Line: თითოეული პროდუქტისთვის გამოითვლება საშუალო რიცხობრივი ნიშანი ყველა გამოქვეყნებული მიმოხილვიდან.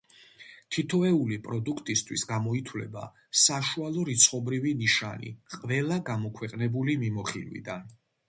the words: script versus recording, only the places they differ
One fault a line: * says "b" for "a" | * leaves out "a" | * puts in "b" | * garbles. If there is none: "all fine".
all fine